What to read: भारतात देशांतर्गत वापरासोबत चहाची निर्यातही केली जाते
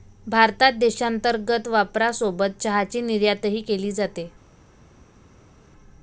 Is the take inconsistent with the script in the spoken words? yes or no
no